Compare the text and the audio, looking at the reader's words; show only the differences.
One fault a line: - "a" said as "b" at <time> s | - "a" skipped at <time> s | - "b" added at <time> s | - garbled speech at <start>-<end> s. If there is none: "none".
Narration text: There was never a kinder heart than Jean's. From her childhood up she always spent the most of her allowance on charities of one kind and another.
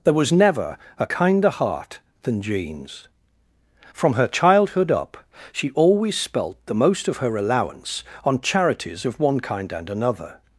- "spent" said as "spelt" at 6.2 s